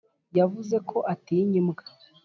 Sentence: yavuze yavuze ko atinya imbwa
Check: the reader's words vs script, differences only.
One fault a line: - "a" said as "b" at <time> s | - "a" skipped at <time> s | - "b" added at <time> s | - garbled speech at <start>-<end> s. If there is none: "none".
- "yavuze" skipped at 0.8 s